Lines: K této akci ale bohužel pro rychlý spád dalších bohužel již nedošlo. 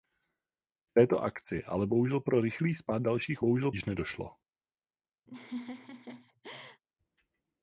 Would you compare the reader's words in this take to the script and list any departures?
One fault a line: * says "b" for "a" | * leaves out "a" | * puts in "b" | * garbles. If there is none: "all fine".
all fine